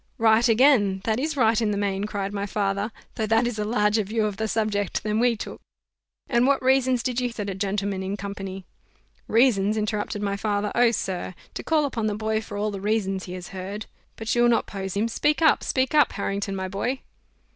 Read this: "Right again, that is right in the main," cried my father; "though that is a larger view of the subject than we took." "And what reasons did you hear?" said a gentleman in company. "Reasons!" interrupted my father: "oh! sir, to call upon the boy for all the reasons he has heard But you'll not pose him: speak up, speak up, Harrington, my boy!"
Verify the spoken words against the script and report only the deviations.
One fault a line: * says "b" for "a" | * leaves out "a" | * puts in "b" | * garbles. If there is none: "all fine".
* leaves out "hear"